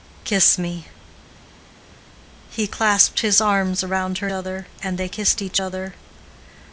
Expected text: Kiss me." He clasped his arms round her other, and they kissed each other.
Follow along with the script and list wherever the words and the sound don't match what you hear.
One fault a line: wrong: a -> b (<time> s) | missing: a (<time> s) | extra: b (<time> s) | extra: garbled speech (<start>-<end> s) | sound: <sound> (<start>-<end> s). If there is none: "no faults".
no faults